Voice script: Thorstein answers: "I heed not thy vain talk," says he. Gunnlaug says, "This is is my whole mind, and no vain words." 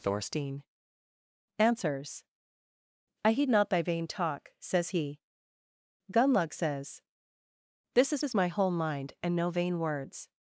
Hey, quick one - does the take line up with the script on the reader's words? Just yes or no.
yes